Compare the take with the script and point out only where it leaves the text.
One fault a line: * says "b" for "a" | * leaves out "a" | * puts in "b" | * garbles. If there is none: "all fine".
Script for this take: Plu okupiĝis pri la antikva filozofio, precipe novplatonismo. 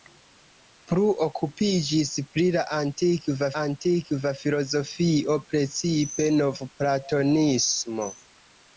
* puts in "antikva"